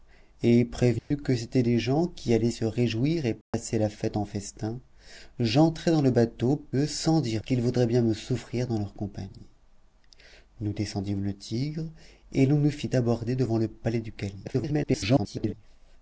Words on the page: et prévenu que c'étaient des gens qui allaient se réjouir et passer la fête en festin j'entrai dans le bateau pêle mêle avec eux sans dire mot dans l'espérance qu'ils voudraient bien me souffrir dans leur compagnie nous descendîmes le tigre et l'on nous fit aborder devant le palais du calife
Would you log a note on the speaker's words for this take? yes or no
yes